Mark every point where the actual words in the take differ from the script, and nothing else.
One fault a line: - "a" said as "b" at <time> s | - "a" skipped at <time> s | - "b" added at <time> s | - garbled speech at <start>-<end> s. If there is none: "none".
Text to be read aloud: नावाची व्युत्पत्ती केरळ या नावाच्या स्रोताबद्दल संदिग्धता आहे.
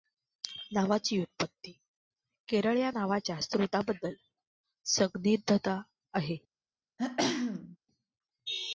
none